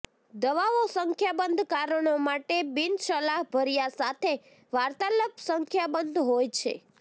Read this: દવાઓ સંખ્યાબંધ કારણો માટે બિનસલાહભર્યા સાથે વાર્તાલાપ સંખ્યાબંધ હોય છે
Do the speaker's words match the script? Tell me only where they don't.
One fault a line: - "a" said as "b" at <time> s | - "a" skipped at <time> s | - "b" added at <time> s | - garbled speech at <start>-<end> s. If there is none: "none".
none